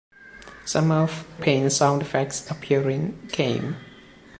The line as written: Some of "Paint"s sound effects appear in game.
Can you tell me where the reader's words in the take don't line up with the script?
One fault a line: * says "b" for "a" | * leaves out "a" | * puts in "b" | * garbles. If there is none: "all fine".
all fine